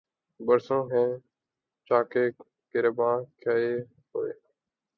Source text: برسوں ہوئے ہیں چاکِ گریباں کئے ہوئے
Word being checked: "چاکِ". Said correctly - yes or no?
yes